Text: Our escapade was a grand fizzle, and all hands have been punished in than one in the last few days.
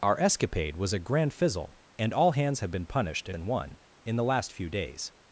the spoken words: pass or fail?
pass